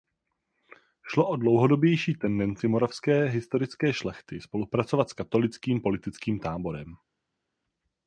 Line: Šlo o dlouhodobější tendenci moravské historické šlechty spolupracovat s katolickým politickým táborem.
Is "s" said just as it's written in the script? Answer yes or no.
yes